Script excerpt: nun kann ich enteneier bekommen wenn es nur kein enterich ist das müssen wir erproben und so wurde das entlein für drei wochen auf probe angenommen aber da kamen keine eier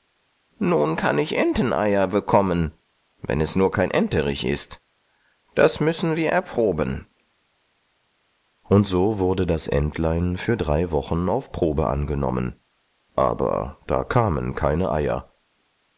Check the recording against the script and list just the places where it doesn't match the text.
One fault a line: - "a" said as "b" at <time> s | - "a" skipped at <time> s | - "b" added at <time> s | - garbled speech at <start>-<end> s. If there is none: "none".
none